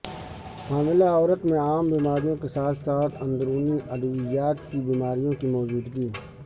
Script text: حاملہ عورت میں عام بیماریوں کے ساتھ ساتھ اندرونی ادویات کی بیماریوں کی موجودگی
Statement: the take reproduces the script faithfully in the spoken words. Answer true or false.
true